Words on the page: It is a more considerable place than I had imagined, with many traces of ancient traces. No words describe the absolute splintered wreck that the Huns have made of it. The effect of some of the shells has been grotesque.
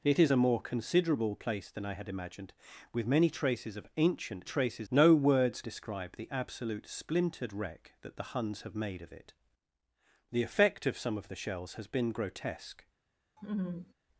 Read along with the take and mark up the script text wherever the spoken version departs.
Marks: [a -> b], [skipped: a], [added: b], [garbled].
It is a more considerable place than I had imagined, with many traces of ancient traces. No words describe the absolute splintered wreck that the Huns have made of it. The effect of some of the shells has been grotesque.